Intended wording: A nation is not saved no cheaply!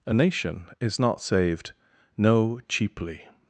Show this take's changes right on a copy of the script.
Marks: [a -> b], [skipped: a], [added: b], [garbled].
A nation is not saved no cheaply!